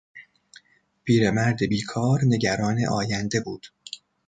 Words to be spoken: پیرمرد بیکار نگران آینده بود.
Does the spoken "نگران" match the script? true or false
true